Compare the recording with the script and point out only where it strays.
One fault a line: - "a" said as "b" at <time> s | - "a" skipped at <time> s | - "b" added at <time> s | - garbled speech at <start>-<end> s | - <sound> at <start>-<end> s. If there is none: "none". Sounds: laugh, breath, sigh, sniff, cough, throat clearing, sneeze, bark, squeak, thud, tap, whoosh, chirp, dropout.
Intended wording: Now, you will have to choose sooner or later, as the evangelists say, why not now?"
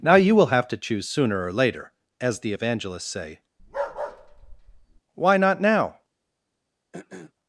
- bark at 3.6-5.0 s
- throat clearing at 6.9-7.3 s